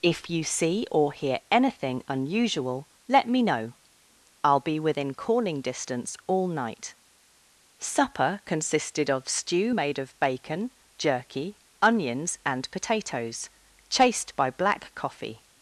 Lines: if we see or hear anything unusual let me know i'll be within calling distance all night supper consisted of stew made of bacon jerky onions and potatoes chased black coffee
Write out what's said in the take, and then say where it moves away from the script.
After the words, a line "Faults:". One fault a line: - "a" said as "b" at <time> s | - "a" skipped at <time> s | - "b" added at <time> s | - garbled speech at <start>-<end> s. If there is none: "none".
if you see or hear anything unusual let me know i'll be within calling distance all night supper consisted of stew made of bacon jerky onions and potatoes chased by black coffee
Faults:
- "we" said as "you" at 0.3 s
- "by" added at 14.4 s